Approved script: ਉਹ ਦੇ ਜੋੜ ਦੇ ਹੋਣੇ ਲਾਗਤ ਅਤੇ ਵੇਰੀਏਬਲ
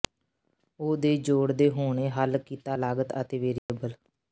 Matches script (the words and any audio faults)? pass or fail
fail